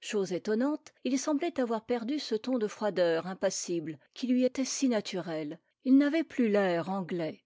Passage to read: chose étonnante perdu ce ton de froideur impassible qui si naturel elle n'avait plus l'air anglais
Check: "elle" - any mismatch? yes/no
yes